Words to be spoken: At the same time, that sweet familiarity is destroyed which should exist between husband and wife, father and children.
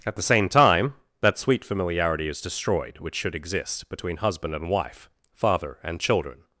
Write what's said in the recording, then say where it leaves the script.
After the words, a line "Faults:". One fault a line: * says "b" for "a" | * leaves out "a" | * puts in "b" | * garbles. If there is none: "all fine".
At the same time, that sweet familiarity is destroyed which should exist between husband and wife, father and children.
Faults:
all fine